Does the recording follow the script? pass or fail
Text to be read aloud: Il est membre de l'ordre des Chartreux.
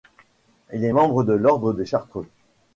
pass